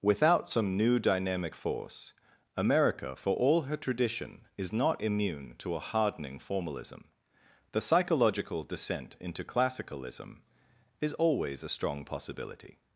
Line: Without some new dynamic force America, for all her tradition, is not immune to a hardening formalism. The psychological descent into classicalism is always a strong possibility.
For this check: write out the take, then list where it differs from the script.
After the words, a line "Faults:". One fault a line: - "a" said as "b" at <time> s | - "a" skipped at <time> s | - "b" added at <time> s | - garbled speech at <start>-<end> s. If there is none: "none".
Without some new dynamic force America, for all her tradition, is not immune to a hardening formalism. The psychological descent into classicalism is always a strong possibility.
Faults:
none